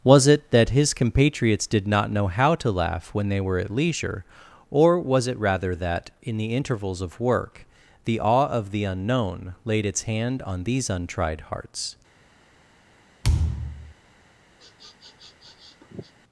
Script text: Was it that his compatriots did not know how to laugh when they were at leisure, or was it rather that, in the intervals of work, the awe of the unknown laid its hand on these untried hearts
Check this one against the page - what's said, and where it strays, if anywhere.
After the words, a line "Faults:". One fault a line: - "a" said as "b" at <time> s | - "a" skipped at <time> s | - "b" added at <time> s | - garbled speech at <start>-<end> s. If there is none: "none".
Was it that his compatriots did not know how to laugh when they were at leisure, or was it rather that, in the intervals of work, the awe of the unknown laid its hand on these untried hearts
Faults:
none